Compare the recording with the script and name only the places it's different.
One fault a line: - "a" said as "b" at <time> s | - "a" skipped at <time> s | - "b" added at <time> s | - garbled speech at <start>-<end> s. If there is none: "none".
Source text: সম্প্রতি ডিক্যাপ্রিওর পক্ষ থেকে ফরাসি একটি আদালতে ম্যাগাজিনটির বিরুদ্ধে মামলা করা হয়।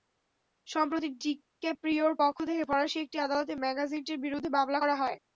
none